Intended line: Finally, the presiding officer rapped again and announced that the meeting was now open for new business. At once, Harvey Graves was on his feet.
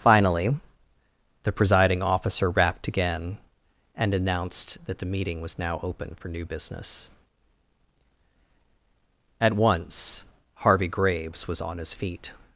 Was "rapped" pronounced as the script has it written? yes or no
yes